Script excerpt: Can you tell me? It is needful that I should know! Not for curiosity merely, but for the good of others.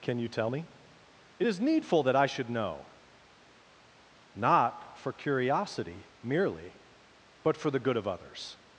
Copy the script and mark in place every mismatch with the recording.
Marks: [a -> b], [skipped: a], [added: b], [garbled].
Can you tell me? It is needful that I should know! Not for curiosity merely, but for the good of others.